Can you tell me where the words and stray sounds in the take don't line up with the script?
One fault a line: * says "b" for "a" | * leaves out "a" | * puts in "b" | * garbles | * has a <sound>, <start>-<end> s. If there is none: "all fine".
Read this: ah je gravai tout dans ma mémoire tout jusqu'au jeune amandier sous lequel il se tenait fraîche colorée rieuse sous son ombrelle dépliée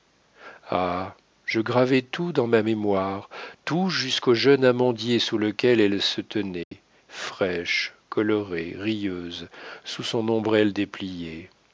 * says "elle" for "il"
* has a dropout, 6.6-6.7 s